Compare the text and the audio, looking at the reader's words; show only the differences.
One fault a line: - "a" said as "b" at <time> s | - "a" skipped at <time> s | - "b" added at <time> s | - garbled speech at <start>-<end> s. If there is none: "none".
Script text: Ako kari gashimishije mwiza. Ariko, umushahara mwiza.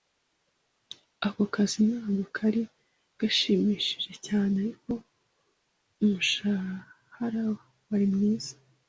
- "kazi ntabwo" added at 1.5 s
- "mwiza" said as "cyane" at 4.3 s
- "wari" added at 7.9 s